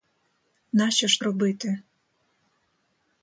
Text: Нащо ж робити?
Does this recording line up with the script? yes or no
yes